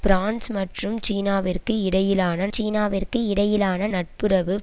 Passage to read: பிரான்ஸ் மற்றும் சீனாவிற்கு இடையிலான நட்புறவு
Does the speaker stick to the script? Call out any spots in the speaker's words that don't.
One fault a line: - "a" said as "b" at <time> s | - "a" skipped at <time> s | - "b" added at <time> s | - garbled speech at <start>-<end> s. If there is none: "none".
- "சீனாவிற்கு இடையிலான" added at 2.5 s